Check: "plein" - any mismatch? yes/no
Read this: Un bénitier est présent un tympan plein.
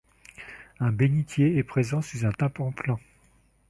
no